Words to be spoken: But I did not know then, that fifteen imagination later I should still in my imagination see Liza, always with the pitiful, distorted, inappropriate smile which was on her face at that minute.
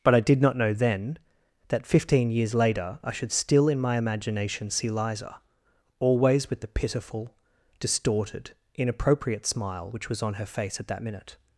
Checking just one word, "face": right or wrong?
right